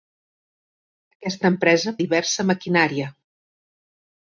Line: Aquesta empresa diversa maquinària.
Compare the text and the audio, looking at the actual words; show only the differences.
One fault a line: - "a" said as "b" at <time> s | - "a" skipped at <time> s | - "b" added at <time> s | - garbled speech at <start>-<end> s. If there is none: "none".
none